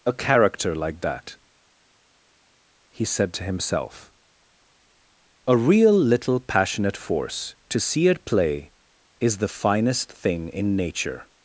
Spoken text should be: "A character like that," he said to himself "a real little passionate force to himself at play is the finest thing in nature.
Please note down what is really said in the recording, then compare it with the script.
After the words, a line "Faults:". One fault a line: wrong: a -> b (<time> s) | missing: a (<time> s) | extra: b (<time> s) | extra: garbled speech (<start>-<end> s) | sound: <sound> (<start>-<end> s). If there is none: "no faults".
"A character like that," he said to himself "a real little passionate force to see at play is the finest thing in nature.
Faults:
wrong: himself -> see (7.8 s)